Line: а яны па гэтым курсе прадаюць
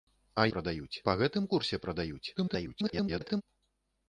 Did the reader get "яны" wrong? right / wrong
wrong